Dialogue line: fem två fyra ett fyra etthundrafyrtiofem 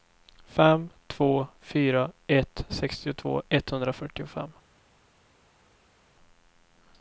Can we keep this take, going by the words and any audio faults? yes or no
no